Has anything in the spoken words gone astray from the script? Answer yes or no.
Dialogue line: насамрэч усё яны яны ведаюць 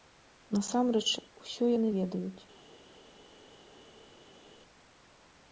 yes